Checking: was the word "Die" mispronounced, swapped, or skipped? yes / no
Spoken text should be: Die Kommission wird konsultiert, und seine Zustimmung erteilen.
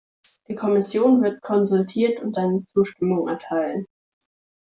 no